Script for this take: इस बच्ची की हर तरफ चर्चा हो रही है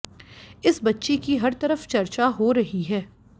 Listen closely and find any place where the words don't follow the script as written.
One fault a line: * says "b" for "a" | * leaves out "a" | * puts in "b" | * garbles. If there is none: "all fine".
all fine